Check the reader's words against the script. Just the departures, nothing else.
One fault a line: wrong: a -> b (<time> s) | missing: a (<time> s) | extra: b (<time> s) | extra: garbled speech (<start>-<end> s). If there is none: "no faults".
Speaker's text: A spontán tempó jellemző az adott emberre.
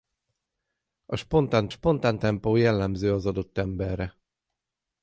extra: spontán (1.7 s)